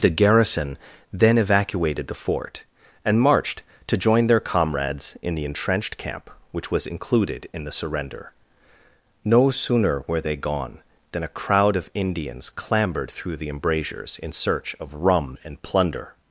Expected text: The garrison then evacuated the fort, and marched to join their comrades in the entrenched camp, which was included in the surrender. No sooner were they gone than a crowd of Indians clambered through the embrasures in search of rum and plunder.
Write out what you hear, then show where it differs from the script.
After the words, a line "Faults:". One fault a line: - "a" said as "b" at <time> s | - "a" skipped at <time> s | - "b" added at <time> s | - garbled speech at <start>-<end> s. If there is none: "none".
The garrison then evacuated the fort, and marched to join their comrades in the entrenched camp, which was included in the surrender. No sooner were they gone than a crowd of Indians clambered through the embrasures in search of rum and plunder.
Faults:
none